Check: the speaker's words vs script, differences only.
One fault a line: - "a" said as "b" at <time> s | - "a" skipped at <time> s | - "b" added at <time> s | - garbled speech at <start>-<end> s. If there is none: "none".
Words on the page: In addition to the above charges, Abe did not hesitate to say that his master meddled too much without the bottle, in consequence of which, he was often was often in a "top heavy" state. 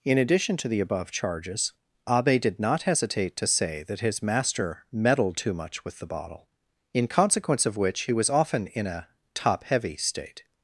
- "without" said as "with" at 5.8 s
- "was often" skipped at 8.7 s